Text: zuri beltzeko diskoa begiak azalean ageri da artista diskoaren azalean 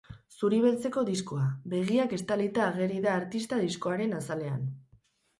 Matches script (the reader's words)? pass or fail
fail